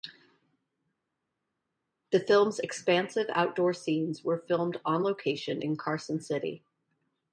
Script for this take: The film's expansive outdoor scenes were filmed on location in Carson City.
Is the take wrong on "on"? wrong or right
right